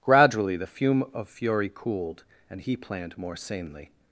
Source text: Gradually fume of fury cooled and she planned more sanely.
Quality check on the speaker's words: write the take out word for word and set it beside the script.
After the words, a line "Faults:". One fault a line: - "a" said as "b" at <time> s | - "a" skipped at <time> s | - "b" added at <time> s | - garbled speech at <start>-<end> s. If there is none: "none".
Gradually the fume of fury cooled and he planned more sanely.
Faults:
- "the" added at 0.6 s
- "she" said as "he" at 2.6 s